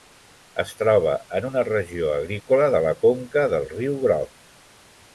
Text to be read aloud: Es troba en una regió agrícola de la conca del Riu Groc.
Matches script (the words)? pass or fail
pass